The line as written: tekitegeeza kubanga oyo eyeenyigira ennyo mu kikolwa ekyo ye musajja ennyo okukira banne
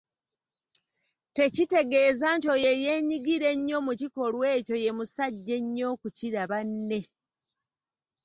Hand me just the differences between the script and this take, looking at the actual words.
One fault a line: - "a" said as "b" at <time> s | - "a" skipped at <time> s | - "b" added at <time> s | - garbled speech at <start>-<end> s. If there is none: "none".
- "kubanga" said as "nti" at 2.4 s